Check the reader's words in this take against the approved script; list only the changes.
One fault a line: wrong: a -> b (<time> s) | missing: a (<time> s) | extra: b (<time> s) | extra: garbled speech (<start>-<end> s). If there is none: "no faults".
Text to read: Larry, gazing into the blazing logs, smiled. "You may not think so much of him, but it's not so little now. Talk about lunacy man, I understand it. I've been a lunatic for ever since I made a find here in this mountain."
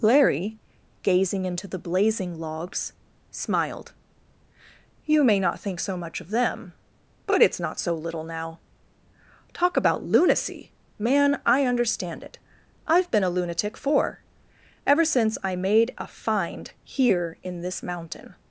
wrong: him -> them (6.3 s)